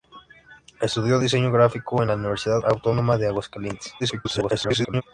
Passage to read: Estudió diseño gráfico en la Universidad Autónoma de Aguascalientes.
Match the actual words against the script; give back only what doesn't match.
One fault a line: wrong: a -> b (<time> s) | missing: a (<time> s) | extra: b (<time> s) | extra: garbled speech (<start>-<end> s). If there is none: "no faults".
extra: garbled speech (4.0-5.0 s)